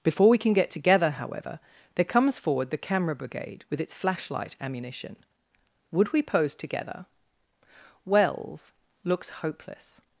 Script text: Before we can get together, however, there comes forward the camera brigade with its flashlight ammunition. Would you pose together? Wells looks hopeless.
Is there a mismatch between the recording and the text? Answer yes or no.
yes